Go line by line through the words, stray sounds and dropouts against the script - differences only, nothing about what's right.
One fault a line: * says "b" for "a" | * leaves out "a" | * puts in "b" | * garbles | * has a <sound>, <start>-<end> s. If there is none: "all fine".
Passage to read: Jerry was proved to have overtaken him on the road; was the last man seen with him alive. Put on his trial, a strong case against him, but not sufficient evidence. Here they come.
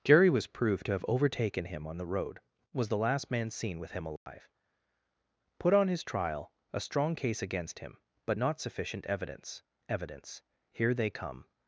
* has a dropout, 4.2-4.3 s
* puts in "evidence"